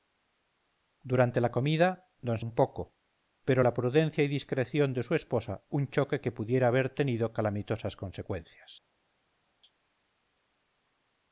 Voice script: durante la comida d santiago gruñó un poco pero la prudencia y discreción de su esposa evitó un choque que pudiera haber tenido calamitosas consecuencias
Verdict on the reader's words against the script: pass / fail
fail